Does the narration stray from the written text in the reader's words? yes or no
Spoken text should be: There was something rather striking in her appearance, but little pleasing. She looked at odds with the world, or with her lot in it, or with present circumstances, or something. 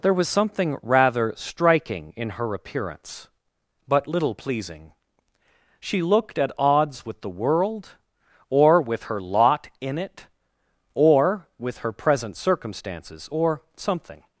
yes